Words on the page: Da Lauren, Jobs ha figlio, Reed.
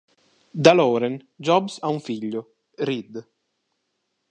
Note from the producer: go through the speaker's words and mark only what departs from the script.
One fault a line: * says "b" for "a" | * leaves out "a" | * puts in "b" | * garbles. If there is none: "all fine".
* puts in "un"